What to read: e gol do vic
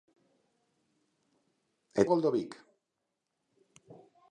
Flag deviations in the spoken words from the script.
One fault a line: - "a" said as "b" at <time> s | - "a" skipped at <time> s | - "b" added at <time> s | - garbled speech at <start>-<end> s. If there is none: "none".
none